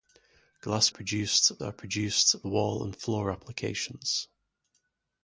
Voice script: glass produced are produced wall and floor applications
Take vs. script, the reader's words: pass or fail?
pass